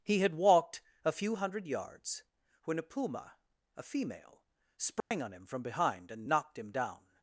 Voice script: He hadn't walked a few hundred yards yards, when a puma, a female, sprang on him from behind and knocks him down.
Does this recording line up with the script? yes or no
no